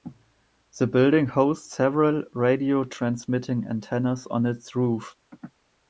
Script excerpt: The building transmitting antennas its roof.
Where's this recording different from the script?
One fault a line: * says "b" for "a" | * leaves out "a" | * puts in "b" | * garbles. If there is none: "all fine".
* puts in "hosts several radio"
* puts in "on"